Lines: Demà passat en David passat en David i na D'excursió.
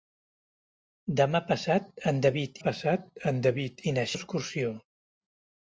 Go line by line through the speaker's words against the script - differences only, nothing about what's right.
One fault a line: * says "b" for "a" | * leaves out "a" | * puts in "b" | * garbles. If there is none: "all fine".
all fine